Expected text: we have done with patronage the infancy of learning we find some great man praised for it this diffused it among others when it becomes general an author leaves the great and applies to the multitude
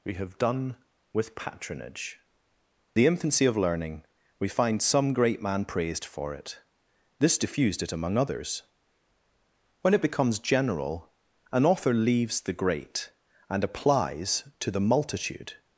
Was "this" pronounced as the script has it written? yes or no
yes